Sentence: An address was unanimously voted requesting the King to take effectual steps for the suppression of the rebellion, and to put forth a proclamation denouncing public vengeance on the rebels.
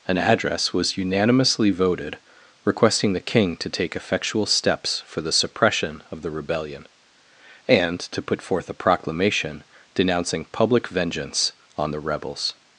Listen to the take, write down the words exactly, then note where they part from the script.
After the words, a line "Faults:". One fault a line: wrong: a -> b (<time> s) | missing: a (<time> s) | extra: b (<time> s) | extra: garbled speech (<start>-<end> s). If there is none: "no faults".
An address was unanimously voted requesting the King to take effectual steps for the suppression of the rebellion, and to put forth a proclamation denouncing public vengeance on the rebels.
Faults:
no faults